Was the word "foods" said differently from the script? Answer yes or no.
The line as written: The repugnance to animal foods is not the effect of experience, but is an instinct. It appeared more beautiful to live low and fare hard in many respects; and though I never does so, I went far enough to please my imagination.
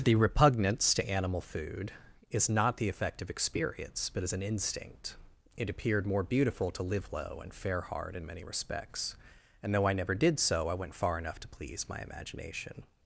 yes